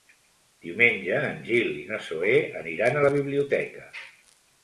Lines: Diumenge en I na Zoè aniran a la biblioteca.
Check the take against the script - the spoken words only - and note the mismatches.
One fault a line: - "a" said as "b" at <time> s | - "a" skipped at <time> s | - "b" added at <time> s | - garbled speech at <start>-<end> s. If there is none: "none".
- "Gil" added at 1.5 s